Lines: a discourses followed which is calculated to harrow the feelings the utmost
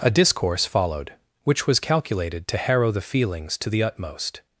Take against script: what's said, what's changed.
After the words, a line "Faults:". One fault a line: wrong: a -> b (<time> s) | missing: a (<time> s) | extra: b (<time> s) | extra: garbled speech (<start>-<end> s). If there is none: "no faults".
a discourse followed which was calculated to harrow the feelings to the utmost
Faults:
wrong: discourses -> discourse (0.1 s)
wrong: is -> was (1.7 s)
extra: to (3.6 s)